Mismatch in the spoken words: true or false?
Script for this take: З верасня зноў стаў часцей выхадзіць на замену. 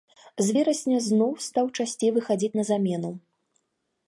false